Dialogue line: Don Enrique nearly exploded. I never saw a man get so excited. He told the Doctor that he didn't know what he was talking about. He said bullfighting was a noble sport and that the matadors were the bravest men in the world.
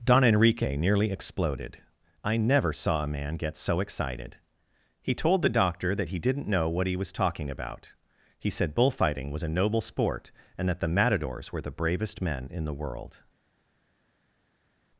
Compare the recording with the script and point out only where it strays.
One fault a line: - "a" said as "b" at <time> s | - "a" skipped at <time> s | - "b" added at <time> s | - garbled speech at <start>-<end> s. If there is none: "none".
none